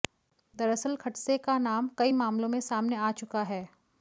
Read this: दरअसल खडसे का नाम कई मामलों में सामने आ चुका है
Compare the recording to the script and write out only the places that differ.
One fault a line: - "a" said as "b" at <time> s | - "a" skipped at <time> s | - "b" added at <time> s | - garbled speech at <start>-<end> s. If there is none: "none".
none